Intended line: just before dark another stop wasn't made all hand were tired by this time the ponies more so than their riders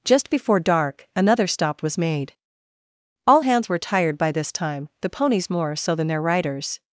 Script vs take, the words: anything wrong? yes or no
yes